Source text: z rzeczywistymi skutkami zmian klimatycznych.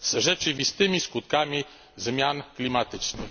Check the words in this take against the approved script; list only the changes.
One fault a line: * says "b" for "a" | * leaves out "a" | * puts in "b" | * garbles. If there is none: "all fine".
all fine